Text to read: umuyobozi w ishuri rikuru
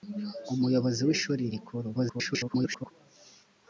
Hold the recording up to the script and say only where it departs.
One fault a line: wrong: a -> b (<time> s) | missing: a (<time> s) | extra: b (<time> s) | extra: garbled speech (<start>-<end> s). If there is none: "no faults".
extra: garbled speech (1.9-2.9 s)